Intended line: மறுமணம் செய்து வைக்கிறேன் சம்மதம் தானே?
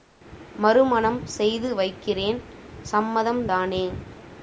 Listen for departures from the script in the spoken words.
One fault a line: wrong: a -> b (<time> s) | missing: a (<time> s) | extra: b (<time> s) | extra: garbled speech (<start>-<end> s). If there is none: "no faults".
no faults